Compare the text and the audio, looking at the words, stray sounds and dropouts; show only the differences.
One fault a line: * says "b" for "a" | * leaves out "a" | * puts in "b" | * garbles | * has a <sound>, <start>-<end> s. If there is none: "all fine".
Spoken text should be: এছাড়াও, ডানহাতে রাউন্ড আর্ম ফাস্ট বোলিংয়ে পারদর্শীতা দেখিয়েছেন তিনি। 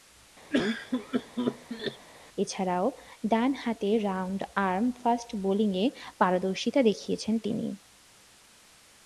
* has a cough, 0.5-2.1 s